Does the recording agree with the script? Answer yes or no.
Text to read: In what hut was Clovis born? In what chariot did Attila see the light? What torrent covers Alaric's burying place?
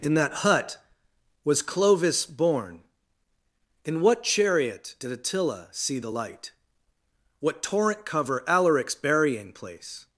no